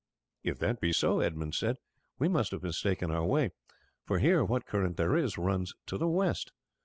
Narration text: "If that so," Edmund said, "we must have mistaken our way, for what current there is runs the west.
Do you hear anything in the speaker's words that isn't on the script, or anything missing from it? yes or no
yes